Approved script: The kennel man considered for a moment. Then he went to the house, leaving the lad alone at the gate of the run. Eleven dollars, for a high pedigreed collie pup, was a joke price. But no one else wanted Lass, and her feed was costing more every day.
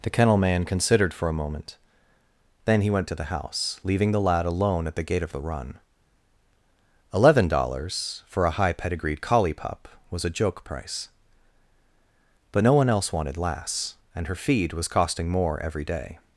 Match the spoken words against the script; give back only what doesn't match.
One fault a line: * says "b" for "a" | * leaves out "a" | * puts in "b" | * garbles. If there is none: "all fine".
all fine